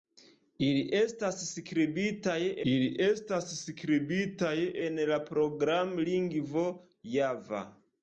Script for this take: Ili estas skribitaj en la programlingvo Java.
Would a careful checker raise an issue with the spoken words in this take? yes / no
yes